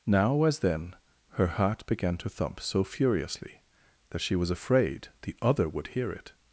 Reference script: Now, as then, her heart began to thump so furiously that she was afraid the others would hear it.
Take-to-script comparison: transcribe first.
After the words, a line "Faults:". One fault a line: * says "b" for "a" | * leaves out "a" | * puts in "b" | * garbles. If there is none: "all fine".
Now, as then, her heart began to thump so furiously that she was afraid the other would hear it.
Faults:
* says "other" for "others"